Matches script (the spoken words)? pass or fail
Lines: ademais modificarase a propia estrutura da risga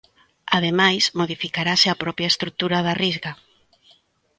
pass